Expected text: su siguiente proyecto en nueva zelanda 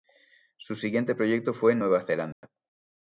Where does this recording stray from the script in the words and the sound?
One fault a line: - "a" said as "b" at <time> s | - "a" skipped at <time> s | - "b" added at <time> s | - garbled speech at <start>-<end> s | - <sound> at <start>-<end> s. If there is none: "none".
- "fue" added at 1.5 s
- dropout at 2.3-2.4 s